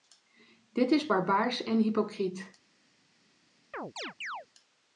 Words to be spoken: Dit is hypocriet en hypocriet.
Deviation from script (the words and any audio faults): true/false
true